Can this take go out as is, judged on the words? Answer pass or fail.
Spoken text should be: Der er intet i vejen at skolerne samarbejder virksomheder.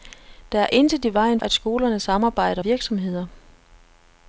pass